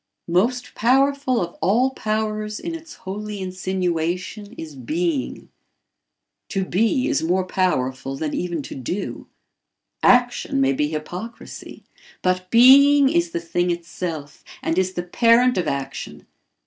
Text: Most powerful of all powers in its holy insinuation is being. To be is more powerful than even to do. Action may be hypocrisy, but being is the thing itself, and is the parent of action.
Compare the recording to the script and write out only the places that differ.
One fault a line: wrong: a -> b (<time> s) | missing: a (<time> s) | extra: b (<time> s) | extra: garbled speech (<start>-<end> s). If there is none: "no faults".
no faults